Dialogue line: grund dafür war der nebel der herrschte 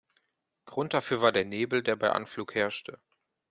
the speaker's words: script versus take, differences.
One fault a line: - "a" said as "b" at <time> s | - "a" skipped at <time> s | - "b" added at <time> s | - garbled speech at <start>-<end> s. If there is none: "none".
- "bei anflug" added at 1.9 s